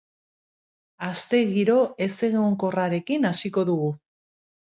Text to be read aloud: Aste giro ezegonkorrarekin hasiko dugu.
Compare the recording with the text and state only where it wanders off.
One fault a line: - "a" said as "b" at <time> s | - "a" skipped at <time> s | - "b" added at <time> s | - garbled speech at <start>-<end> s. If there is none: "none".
none